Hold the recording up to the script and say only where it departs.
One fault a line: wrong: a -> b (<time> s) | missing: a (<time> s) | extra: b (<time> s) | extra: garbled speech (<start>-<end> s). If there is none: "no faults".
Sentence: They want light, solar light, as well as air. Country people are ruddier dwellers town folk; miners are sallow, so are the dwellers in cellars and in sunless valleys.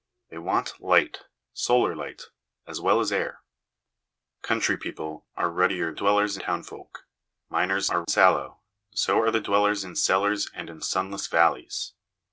no faults